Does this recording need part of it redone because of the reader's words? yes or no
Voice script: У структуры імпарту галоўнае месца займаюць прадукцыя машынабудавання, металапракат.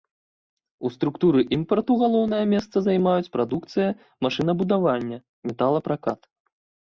no